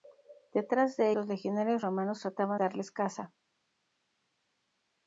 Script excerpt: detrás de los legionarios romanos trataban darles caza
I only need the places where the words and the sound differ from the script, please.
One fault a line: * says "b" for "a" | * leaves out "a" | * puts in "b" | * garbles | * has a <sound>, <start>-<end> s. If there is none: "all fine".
all fine